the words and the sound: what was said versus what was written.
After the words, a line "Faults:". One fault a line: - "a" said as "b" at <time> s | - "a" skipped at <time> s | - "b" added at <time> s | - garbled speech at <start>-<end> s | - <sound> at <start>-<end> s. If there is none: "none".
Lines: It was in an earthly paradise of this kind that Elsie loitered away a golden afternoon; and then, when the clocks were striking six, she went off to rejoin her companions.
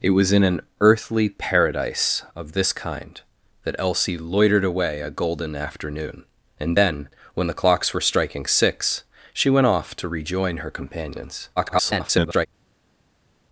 It was in an earthly paradise of this kind that Elsie loitered away a golden afternoon; and then, when the clocks were striking six, she went off to rejoin her companions. [garbled]
Faults:
- garbled speech at 11.6-12.5 s